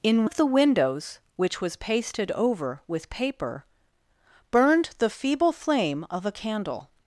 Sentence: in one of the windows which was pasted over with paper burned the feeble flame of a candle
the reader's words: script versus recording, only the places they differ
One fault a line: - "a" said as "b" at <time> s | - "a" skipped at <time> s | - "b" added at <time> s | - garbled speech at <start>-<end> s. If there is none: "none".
- "one" skipped at 0.2 s